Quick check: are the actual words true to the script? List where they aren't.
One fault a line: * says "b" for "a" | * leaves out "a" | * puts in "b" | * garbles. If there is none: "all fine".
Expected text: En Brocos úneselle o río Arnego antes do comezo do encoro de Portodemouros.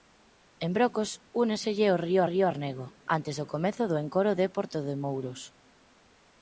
* puts in "río"